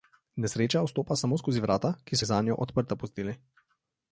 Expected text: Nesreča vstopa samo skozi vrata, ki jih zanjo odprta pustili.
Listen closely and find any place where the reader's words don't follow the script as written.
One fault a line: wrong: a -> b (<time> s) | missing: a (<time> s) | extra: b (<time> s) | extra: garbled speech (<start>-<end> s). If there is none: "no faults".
no faults